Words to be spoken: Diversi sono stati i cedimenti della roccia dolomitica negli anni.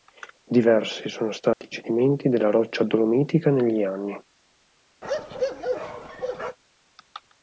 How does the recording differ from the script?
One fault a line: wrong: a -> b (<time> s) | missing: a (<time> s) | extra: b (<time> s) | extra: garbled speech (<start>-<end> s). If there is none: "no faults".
no faults